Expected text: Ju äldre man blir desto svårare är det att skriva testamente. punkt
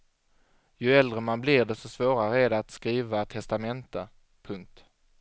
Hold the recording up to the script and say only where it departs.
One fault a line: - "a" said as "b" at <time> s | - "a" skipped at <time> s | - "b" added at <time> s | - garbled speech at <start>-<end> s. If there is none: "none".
none